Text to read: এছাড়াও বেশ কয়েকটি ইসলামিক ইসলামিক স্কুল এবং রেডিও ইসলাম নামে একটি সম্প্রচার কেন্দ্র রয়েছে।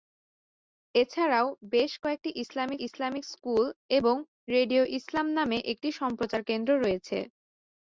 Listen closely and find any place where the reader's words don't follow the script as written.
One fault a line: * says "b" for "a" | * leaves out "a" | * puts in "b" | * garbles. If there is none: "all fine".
all fine